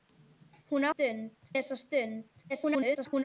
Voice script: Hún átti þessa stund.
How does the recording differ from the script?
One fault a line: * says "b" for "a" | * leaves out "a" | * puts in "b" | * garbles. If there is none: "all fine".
* says "stund" for "átti"
* garbles